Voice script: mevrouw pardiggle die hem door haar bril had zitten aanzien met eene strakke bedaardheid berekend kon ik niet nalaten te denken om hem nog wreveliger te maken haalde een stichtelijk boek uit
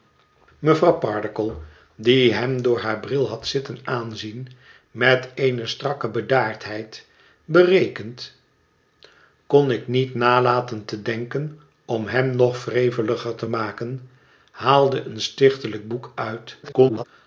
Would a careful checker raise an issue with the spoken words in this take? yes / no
yes